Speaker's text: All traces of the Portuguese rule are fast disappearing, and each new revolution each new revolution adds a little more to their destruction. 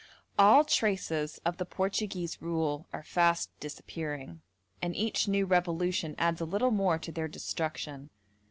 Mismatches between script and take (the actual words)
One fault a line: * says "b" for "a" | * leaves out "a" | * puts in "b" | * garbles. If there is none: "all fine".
* leaves out "each new revolution"